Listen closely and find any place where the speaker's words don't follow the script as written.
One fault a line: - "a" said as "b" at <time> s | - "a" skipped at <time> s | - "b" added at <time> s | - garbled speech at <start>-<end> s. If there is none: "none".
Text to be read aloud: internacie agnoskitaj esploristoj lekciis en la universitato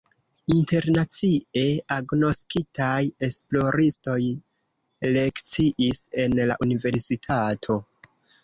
none